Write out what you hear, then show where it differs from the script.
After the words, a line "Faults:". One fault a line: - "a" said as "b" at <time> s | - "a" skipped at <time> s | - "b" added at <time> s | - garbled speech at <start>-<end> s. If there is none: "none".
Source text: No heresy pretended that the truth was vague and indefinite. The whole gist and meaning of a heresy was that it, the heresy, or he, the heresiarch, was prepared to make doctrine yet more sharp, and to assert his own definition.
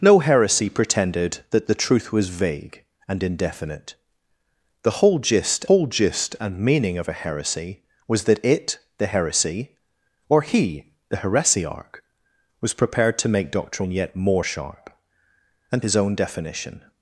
No heresy pretended that the truth was vague and indefinite. The whole gist whole gist and meaning of a heresy was that it, the heresy, or he, the heresiarch, was prepared to make doctrine yet more sharp, and his own definition.
Faults:
- "whole gist" added at 5.6 s
- "to assert" skipped at 15.8 s